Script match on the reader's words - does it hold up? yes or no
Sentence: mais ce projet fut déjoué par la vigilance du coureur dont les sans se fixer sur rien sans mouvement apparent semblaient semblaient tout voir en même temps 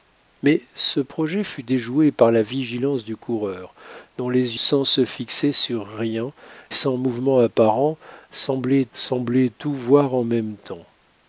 yes